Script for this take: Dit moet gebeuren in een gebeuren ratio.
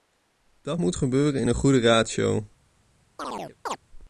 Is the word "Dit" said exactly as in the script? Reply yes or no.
no